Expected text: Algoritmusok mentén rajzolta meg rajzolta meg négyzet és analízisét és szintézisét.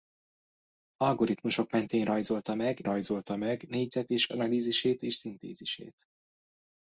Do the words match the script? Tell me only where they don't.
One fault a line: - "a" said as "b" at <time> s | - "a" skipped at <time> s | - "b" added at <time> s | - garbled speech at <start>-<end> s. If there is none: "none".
none